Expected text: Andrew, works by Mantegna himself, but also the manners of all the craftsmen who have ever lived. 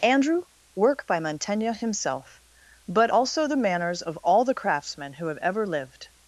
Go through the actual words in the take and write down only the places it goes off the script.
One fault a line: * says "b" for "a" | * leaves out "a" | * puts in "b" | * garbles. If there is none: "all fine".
* says "work" for "works"